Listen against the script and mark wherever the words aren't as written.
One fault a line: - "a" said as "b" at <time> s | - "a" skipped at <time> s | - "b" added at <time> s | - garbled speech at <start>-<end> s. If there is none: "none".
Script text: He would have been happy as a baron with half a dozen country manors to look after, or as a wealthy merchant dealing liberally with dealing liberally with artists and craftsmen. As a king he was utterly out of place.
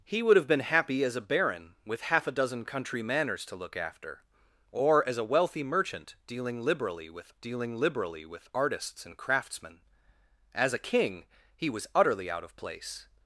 none